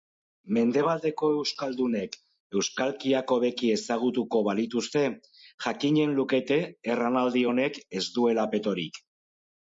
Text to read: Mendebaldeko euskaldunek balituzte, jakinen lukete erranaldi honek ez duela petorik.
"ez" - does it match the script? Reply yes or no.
yes